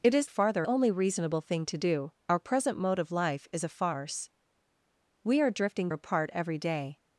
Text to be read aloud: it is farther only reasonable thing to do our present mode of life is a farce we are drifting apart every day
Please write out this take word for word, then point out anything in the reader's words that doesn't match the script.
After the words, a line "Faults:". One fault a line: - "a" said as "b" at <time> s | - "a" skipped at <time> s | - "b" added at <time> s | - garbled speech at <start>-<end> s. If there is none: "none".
it is farther only reasonable thing to do our present mode of life is a farce we are drifting apart every day
Faults:
none